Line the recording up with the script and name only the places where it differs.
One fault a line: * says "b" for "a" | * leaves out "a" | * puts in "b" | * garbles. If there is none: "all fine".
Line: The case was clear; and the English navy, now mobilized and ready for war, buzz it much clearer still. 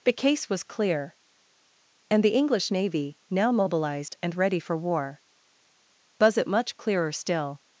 all fine